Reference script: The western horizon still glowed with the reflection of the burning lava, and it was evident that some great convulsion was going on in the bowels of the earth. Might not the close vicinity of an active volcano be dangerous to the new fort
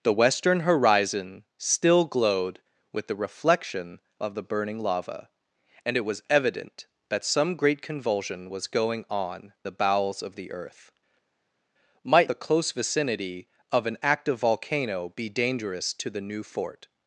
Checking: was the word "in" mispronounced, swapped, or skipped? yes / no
yes